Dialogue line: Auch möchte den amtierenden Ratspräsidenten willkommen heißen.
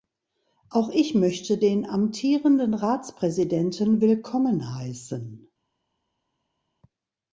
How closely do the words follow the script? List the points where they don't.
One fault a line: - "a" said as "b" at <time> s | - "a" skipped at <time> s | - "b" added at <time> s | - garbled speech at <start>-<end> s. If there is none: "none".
- "ich" added at 0.9 s